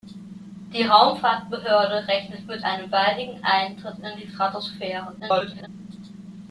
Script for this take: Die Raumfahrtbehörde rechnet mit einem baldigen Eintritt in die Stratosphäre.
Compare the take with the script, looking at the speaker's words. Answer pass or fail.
fail